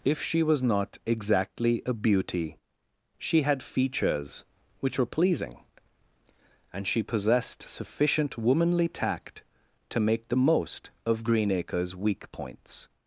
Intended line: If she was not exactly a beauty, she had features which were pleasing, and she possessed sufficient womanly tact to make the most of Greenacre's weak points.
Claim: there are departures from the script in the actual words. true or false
false